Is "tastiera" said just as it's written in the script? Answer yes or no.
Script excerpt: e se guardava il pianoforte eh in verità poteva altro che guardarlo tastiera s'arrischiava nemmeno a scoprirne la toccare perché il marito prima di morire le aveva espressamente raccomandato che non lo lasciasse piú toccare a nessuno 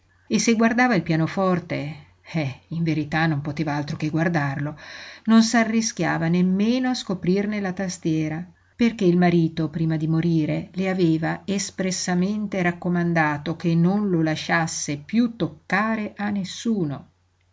no